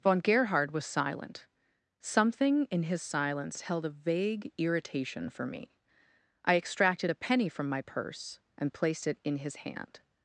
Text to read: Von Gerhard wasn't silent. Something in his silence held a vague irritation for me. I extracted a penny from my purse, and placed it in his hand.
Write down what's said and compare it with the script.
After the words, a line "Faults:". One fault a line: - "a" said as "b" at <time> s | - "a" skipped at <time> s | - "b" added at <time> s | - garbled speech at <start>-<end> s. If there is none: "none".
Von Gerhard was silent. Something in his silence held a vague irritation for me. I extracted a penny from my purse, and placed it in his hand.
Faults:
- "wasn't" said as "was" at 0.7 s